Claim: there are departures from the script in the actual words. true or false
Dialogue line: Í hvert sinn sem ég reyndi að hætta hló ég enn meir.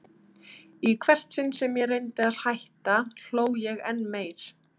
false